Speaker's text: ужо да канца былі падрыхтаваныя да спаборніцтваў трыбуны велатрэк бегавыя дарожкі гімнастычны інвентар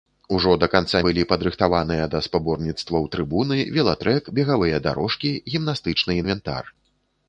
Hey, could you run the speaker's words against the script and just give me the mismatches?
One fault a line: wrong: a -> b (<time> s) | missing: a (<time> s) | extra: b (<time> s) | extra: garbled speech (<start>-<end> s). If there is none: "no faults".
no faults